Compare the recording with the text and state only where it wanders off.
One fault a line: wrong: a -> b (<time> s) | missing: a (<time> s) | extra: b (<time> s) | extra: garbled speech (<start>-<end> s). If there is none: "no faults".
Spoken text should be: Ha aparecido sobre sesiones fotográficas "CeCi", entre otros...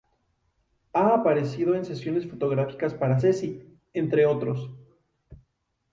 wrong: sobre -> en (1.8 s)
extra: para (3.0 s)